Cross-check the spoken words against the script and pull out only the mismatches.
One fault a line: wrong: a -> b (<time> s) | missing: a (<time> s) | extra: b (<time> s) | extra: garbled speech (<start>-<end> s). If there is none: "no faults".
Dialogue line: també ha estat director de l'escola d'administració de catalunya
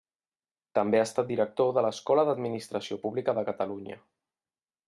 extra: pública (3.1 s)